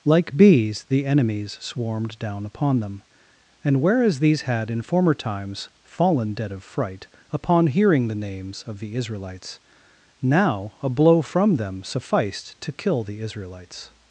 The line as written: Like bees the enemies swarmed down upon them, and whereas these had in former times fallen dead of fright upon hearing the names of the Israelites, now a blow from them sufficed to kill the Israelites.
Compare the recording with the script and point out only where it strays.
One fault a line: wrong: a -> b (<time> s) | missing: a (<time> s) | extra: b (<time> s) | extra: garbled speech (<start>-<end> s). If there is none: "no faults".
no faults